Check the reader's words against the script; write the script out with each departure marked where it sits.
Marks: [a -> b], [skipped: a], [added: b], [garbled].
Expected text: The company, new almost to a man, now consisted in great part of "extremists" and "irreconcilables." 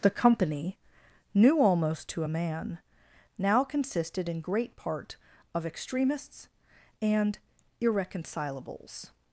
The company, new almost to a man, now consisted in great part of "extremists" and "irreconcilables."